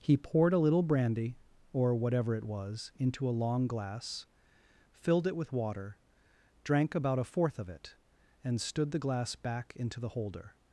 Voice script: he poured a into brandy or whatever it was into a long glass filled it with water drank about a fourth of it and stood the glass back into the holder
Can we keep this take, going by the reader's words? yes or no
no